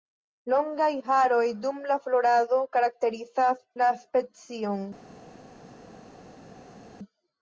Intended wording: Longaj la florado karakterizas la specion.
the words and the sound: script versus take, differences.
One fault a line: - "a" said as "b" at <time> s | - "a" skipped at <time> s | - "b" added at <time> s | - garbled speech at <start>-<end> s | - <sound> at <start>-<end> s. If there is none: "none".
- "haroj dum" added at 1.1 s